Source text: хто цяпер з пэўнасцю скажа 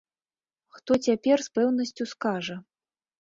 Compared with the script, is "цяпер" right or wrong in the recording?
right